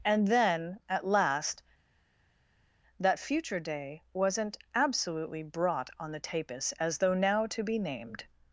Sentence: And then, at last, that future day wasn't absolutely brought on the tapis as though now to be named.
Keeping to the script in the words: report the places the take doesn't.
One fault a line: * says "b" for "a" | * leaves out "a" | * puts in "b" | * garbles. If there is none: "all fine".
all fine